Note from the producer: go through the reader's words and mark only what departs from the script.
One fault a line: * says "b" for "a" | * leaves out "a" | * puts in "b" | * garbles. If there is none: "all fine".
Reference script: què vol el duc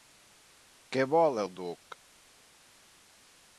all fine